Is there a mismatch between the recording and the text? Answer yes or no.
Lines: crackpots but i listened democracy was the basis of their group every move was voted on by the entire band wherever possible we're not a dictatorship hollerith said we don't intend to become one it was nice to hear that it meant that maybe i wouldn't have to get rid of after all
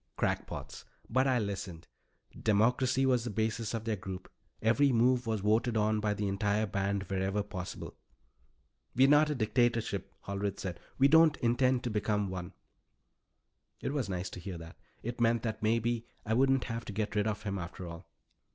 yes